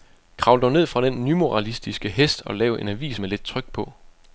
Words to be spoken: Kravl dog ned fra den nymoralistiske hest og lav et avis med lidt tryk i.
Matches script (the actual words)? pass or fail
fail